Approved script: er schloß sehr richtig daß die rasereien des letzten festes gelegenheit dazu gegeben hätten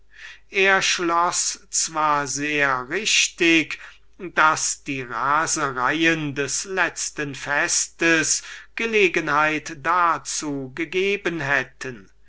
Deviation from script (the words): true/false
true